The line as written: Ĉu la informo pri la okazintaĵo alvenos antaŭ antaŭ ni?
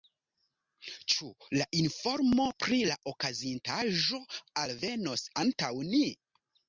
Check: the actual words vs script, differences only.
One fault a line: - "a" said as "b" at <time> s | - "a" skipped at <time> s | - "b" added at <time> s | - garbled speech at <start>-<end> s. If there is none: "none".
- "antaŭ" skipped at 5.7 s